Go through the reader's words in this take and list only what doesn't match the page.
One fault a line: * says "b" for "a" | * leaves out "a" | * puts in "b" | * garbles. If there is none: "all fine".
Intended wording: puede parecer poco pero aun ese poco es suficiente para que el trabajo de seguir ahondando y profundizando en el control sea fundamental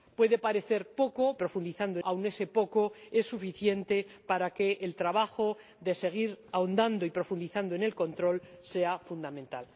* says "profundizando" for "pero"